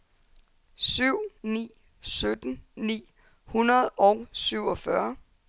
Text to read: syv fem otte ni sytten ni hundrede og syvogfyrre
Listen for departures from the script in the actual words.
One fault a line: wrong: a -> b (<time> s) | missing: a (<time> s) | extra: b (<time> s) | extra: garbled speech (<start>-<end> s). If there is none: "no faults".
missing: fem otte (1.2 s)